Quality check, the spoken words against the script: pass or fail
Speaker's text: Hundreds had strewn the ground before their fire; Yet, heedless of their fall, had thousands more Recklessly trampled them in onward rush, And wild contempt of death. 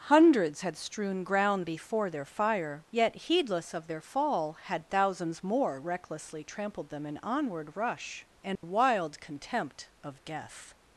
fail